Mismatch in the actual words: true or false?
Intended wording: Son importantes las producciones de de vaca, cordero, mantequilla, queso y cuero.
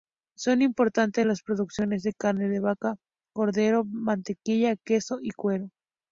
true